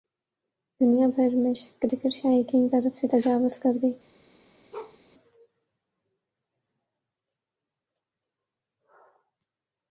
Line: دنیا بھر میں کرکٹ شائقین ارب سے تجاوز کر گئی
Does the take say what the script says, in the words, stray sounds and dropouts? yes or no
no